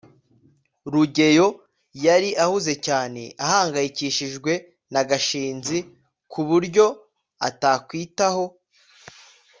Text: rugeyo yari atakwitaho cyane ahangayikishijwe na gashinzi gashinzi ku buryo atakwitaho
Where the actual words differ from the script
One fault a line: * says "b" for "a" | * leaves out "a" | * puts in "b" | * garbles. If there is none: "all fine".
* says "ahuze" for "atakwitaho"
* leaves out "gashinzi"